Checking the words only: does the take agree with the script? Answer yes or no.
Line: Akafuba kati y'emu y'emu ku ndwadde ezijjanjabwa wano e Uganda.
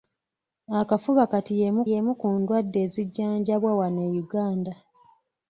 yes